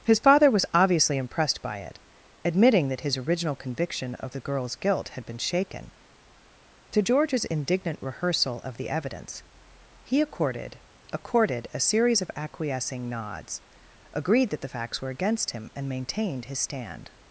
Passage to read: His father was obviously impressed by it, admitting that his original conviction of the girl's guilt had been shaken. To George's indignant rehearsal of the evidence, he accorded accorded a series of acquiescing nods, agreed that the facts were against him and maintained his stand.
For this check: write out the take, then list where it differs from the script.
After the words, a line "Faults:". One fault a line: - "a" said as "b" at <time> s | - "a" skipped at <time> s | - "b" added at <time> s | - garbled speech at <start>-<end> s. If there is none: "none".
His father was obviously impressed by it, admitting that his original conviction of the girl's guilt had been shaken. To George's indignant rehearsal of the evidence, he accorded accorded a series of acquiescing nods, agreed that the facts were against him and maintained his stand.
Faults:
none